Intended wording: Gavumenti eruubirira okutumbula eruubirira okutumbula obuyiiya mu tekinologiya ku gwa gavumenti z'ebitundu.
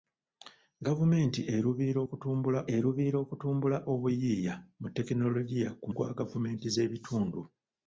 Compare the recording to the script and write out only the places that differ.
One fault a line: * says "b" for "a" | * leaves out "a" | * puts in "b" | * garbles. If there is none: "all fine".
all fine